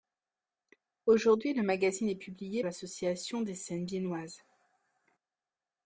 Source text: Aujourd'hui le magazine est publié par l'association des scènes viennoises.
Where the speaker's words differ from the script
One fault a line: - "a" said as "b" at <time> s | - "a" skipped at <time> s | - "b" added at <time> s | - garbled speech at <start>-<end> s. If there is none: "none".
- "par" skipped at 2.6 s